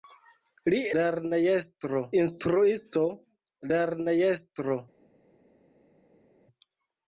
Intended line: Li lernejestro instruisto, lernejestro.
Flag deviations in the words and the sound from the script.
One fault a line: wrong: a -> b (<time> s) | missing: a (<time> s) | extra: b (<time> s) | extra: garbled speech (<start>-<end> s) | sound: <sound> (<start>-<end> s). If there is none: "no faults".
no faults